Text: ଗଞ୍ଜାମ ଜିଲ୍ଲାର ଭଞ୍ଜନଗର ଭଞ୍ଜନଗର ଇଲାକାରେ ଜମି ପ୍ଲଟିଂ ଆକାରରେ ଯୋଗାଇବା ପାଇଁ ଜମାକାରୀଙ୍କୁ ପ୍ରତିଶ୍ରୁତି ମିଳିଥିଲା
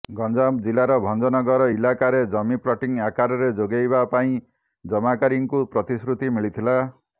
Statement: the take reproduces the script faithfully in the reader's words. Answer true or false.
false